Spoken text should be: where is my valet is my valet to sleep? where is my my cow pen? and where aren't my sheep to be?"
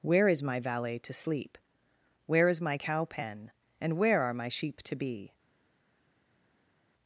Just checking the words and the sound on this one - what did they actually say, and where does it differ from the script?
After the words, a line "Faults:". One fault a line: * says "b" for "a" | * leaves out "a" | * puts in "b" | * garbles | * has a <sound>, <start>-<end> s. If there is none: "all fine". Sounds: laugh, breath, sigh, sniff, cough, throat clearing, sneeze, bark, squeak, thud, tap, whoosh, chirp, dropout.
where is my valet to sleep? where is my cow pen? and where are my sheep to be?"
Faults:
* leaves out "is my valet"
* leaves out "my"
* says "are" for "aren't"